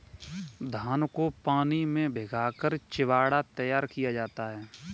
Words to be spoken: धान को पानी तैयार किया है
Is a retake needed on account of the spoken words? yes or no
yes